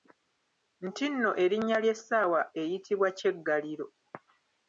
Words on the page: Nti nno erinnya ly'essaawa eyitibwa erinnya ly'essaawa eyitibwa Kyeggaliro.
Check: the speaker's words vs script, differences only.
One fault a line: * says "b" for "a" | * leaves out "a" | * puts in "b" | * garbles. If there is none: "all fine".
* leaves out "erinnya ly'essaawa eyitibwa"